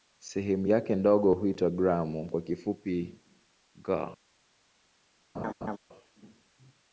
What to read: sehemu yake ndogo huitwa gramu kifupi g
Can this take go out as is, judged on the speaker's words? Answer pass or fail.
fail